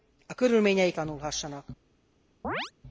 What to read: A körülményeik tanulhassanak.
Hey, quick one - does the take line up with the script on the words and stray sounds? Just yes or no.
no